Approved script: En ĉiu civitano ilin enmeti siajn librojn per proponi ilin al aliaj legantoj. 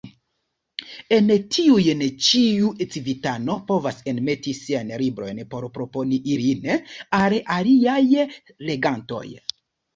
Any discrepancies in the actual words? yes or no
yes